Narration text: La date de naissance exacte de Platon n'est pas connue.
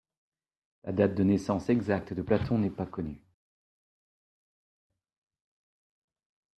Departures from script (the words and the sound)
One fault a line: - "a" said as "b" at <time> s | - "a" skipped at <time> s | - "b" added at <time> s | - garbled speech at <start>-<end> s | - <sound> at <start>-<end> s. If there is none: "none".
none